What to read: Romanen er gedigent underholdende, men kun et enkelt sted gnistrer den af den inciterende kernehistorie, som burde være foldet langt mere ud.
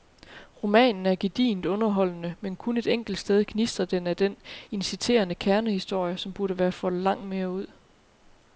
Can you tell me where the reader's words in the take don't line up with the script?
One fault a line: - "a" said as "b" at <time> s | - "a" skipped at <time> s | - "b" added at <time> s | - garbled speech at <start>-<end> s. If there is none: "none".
none